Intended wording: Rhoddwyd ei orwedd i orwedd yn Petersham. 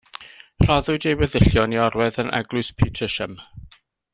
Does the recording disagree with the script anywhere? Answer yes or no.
yes